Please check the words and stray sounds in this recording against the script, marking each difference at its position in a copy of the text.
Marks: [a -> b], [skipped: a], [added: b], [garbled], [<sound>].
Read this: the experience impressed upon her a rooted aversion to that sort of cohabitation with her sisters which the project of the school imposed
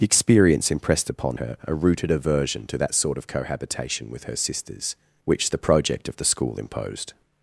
the experience impressed upon her a rooted aversion to that sort of cohabitation with her sisters which the project of the school imposed